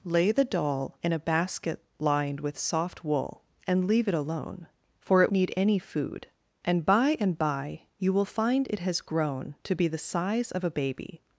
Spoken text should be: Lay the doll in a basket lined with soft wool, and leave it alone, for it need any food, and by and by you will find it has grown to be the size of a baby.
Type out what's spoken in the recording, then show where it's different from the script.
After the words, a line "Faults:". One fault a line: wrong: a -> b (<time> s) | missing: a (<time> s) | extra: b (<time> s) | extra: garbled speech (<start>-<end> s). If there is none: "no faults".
Lay the doll in a basket lined with soft wool, and leave it alone, for it need any food, and by and by you will find it has grown to be the size of a baby.
Faults:
no faults